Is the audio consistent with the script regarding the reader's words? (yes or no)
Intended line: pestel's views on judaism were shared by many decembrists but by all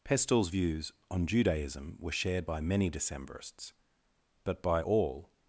yes